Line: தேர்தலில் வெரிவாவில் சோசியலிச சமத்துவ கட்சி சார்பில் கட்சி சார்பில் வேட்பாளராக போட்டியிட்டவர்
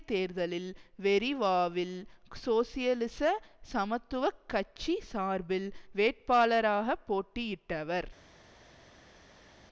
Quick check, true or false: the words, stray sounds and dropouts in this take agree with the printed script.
false